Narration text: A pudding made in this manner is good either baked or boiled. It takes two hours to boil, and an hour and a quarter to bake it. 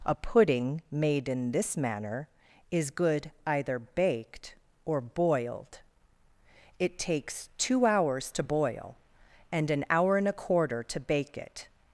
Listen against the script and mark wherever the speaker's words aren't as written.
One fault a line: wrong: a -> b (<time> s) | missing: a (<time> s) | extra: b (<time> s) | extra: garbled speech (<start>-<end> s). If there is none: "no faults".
no faults